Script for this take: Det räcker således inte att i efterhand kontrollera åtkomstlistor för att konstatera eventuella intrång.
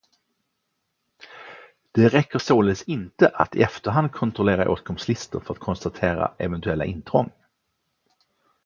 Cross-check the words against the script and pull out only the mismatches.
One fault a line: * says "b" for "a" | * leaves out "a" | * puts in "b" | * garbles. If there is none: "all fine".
all fine